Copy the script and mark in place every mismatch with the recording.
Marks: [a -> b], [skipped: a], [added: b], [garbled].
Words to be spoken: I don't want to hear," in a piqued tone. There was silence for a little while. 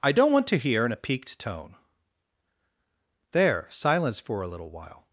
I don't want to hear," in a piqued tone. There [skipped: was] silence for a little while.